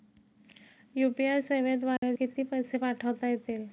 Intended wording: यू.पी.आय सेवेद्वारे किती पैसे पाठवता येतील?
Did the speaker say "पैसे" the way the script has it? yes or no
yes